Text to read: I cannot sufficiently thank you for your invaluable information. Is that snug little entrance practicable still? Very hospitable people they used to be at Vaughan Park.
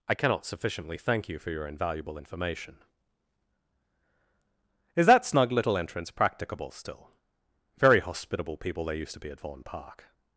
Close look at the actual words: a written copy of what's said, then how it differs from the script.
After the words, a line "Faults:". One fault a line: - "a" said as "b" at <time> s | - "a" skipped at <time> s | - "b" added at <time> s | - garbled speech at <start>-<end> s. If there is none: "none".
I cannot sufficiently thank you for your invaluable information. Is that snug little entrance practicable still? Very hospitable people they used to be at Vaughan Park.
Faults:
none